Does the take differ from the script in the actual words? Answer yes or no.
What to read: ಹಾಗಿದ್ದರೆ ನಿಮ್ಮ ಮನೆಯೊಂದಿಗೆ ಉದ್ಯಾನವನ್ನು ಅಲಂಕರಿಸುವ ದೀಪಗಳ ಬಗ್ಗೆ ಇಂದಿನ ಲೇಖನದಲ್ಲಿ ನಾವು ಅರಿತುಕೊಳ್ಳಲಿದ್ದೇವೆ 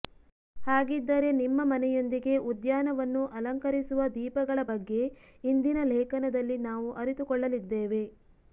no